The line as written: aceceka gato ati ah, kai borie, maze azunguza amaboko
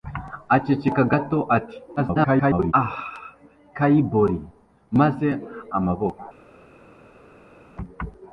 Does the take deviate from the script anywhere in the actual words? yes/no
yes